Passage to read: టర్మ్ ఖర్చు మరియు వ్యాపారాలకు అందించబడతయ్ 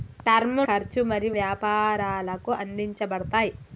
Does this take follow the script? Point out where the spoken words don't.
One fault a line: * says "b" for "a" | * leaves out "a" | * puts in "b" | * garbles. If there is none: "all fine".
all fine